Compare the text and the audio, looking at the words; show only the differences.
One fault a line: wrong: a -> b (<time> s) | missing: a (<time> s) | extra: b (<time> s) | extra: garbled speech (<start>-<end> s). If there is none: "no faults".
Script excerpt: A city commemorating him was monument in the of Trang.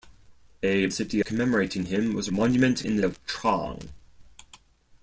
no faults